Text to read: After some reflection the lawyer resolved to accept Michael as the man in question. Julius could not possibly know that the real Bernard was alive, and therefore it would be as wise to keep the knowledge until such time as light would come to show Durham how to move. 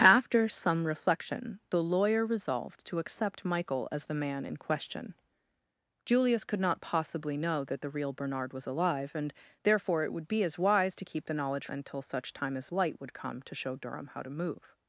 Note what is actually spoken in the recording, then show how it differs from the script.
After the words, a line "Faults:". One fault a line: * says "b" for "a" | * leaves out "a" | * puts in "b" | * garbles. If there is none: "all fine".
After some reflection the lawyer resolved to accept Michael as the man in question. Julius could not possibly know that the real Bernard was alive, and therefore it would be as wise to keep the knowledge until such time as light would come to show Durham how to move.
Faults:
all fine